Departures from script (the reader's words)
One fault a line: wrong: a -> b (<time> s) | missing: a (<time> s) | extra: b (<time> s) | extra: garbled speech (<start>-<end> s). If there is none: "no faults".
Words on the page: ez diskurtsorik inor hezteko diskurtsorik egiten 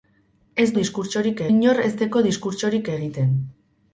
no faults